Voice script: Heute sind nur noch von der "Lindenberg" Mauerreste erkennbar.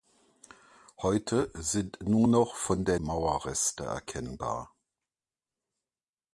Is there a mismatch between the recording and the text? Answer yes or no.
yes